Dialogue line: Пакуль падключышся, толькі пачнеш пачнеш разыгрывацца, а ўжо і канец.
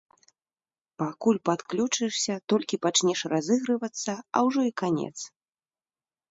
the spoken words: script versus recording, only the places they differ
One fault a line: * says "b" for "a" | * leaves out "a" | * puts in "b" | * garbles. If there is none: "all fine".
* leaves out "пачнеш"